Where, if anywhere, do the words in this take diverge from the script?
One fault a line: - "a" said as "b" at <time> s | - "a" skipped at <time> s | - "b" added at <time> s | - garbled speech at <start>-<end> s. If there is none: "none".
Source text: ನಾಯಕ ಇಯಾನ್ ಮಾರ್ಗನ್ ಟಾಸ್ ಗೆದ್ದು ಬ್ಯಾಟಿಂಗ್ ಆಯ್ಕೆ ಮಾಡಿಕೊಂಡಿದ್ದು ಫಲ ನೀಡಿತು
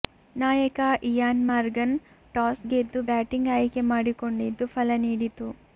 none